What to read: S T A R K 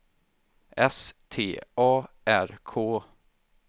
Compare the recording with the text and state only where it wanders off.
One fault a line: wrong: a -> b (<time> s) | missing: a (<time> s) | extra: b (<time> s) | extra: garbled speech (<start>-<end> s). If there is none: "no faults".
no faults